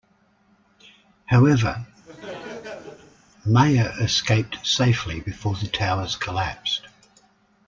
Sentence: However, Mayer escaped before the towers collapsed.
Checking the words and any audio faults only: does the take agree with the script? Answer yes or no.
no